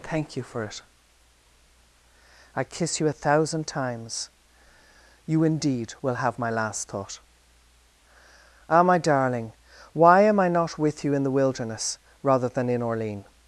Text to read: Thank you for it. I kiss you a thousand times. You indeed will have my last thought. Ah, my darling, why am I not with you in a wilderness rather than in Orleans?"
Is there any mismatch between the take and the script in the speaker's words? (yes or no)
yes